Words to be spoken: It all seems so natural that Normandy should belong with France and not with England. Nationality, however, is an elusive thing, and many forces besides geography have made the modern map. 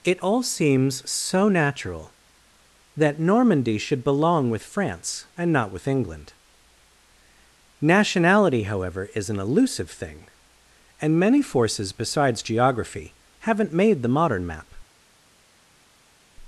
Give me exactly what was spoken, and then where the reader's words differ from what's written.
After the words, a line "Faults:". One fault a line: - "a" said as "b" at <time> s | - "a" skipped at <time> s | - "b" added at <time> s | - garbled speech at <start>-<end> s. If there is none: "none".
It all seems so natural that Normandy should belong with France and not with England. Nationality, however, is an elusive thing, and many forces besides geography haven't made the modern map.
Faults:
- "have" said as "haven't" at 13.4 s